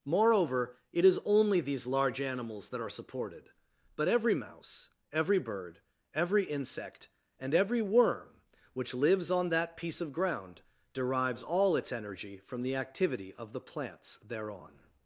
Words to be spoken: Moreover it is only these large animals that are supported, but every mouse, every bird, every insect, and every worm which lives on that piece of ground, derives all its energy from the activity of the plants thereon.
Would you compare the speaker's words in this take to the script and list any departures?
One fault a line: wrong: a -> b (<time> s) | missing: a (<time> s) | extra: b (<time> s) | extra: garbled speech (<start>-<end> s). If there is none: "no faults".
no faults